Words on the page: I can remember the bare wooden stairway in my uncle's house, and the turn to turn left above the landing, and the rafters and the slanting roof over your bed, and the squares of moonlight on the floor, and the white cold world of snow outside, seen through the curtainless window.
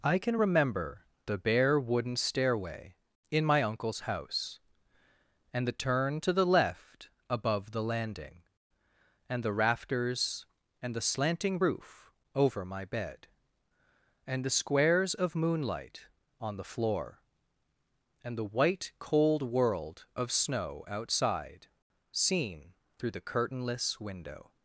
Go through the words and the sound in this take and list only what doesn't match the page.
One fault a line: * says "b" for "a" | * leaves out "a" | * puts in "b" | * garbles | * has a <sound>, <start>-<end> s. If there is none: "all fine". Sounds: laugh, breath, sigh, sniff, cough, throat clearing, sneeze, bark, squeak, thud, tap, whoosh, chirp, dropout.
* says "the" for "turn"
* says "my" for "your"